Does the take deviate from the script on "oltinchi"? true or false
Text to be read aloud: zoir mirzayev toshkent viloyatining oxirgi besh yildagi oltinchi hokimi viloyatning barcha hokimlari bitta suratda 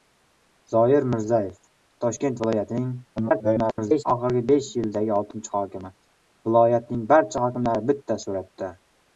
false